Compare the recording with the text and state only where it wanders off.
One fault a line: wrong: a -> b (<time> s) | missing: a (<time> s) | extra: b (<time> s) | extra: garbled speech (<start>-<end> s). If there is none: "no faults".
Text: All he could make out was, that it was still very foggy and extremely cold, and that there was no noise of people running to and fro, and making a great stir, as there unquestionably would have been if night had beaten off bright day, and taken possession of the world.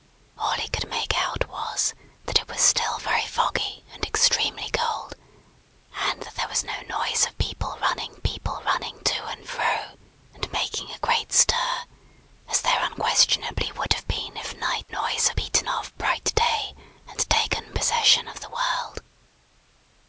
extra: people running (8.2 s)
wrong: had -> noise (14.9 s)